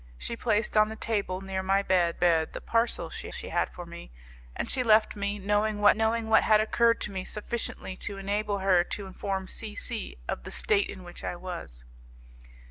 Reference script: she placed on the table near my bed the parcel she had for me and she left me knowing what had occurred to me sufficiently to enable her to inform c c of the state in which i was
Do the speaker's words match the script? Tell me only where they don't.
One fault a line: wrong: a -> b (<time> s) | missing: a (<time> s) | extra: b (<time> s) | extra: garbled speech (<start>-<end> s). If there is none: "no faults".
extra: bed (2.1 s)
extra: she (3.3 s)
extra: knowing what (5.9 s)